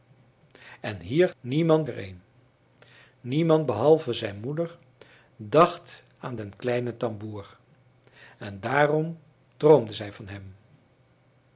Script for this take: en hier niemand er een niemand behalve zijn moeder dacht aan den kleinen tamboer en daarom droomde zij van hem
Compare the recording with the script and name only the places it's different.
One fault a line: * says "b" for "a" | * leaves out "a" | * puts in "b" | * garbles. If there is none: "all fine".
all fine